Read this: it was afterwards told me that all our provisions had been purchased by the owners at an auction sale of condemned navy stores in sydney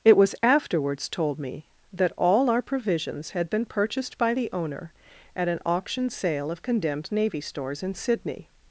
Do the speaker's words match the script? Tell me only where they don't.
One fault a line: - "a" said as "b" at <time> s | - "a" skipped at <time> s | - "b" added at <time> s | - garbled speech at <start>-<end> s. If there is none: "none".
- "owners" said as "owner" at 4.5 s